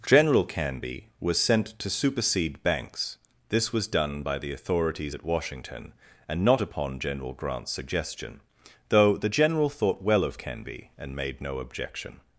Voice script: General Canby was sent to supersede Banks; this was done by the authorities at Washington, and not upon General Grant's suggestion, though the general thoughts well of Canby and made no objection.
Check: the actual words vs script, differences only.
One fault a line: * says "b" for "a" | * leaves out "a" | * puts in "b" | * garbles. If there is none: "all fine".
* says "thought" for "thoughts"